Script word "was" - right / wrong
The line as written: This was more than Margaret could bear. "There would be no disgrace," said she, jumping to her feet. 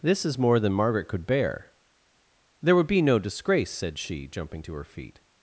wrong